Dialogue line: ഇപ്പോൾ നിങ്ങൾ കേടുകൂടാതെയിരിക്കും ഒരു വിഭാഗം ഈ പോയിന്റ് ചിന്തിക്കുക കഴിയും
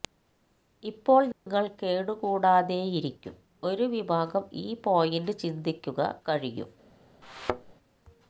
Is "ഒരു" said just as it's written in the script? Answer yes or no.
yes